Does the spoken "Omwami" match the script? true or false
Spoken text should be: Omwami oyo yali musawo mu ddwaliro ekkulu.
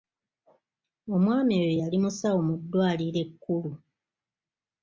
true